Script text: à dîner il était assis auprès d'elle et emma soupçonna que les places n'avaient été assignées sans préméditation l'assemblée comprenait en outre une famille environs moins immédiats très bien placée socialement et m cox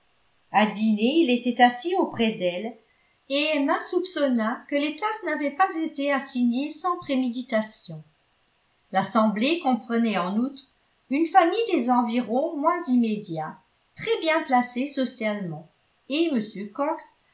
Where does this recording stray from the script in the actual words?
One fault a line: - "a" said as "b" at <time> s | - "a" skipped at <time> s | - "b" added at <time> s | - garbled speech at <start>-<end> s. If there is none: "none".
- "pas" added at 5.5 s
- "des" added at 11.7 s